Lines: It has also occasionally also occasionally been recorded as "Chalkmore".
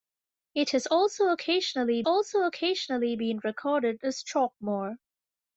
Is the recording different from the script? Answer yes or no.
no